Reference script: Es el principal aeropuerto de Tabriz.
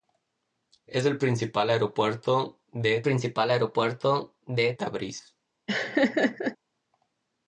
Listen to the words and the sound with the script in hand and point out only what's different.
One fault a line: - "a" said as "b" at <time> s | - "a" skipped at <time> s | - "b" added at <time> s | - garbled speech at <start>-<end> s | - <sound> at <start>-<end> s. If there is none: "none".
- "principal aeropuerto de" added at 3.0 s
- laugh at 5.7-6.6 s